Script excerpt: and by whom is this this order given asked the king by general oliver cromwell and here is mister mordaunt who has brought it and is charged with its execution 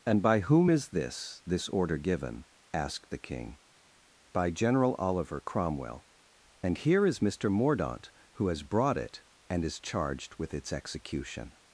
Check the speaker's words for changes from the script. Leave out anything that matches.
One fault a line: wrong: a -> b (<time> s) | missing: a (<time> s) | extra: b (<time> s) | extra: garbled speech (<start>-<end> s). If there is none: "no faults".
no faults